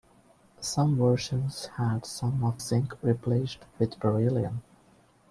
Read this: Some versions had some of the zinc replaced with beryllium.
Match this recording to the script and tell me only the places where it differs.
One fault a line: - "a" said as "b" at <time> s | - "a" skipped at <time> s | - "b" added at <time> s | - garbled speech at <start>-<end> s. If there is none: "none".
- "the" skipped at 2.6 s